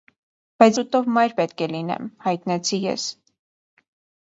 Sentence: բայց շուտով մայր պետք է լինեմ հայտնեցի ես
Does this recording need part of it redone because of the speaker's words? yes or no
no